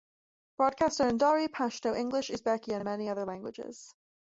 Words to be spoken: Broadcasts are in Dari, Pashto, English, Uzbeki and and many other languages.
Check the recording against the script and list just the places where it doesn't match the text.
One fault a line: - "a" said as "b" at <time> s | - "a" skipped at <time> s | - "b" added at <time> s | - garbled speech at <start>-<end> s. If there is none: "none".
none